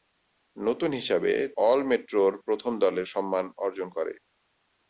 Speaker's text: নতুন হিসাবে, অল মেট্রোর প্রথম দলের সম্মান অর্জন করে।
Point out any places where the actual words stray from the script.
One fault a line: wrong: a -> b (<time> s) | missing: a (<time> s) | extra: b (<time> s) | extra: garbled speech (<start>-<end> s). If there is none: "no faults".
no faults